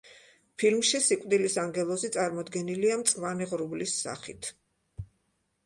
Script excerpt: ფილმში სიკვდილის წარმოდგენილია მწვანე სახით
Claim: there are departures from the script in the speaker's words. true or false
true